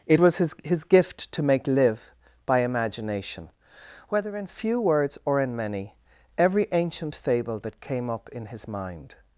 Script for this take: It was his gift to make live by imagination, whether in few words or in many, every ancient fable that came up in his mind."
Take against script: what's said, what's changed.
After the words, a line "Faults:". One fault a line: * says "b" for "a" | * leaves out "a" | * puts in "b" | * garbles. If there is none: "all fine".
It was his his gift to make live by imagination, whether in few words or in many, every ancient fable that came up in his mind."
Faults:
* puts in "his"